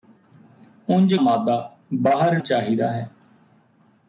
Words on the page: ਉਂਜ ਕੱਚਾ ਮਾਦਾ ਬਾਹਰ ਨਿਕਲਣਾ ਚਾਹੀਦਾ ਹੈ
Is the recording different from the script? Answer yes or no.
yes